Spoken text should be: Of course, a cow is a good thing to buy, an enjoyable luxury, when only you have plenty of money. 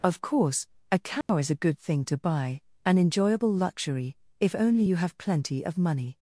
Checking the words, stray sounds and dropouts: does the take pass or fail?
fail